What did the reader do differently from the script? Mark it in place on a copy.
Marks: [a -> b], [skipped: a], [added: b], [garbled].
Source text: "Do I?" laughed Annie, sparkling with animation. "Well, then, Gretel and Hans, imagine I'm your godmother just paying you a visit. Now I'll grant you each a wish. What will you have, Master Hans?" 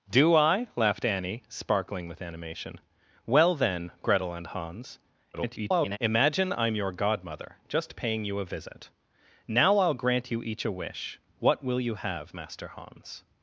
"Do I?" laughed Annie, sparkling with animation. "Well, then, Gretel and Hans, [garbled] imagine I'm your godmother just paying you a visit. Now I'll grant you each a wish. What will you have, Master Hans?"